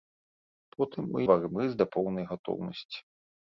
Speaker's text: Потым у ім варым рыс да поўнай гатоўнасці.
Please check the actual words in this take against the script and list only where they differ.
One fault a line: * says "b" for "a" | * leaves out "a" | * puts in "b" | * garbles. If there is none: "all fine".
* leaves out "ім"